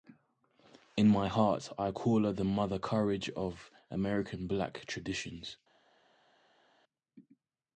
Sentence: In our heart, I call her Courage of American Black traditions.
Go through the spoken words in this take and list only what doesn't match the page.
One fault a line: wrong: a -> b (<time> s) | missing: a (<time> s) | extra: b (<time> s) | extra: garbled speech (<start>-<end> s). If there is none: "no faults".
wrong: our -> my (1.1 s)
extra: the Mother (2.3 s)